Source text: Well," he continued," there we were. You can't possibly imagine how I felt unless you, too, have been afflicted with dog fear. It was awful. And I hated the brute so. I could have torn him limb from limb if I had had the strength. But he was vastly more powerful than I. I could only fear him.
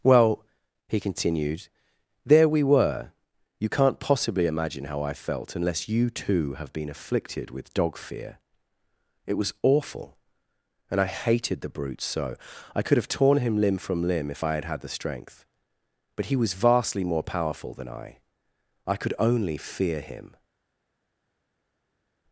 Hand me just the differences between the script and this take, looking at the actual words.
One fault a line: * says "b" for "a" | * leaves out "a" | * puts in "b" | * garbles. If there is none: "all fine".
all fine